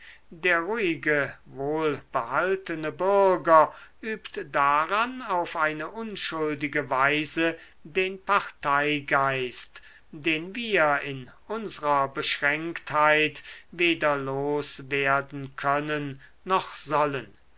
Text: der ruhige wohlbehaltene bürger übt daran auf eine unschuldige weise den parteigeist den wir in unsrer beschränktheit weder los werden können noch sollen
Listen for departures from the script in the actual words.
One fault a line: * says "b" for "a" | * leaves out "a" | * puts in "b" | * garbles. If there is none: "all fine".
all fine